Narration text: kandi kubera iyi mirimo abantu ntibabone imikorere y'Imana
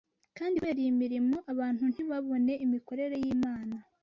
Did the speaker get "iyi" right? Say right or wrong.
right